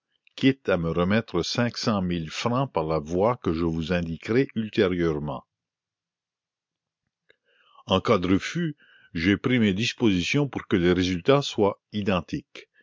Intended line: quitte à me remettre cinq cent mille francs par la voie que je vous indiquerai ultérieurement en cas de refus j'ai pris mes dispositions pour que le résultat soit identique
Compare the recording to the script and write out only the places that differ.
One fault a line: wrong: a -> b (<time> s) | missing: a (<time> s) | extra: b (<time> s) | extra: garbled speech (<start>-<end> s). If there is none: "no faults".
no faults